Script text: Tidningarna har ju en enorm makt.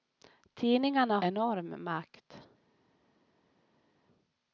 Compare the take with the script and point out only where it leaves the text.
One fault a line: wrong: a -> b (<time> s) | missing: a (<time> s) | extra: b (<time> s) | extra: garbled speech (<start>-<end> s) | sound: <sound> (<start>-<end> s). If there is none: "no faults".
missing: har ju en (1.2 s)